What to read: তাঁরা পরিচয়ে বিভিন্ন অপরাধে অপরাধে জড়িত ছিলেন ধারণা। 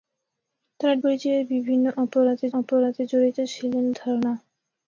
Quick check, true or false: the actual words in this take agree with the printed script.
true